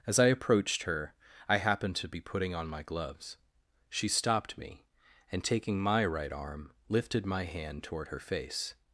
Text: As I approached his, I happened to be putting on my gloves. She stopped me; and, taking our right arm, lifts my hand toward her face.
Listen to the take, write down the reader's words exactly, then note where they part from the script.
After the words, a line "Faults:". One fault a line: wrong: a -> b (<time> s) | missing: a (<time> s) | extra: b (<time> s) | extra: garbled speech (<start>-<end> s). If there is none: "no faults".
As I approached her, I happened to be putting on my gloves. She stopped me; and, taking my right arm, lifted my hand toward her face.
Faults:
wrong: his -> her (0.8 s)
wrong: our -> my (5.8 s)
wrong: lifts -> lifted (6.9 s)